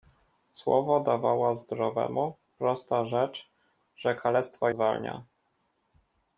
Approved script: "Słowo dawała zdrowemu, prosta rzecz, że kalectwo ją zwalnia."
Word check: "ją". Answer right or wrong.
wrong